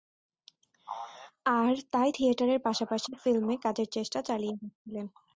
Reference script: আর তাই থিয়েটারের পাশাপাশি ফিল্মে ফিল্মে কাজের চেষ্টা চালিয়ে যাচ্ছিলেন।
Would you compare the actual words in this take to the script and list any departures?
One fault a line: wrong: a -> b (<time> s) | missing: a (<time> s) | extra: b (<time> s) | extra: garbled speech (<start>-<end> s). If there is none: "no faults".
missing: ফিল্মে (3.6 s)